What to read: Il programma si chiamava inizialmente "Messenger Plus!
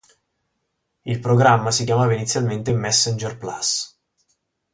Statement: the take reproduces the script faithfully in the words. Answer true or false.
true